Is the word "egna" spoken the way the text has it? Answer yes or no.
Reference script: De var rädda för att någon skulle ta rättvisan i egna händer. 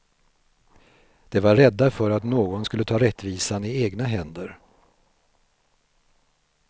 yes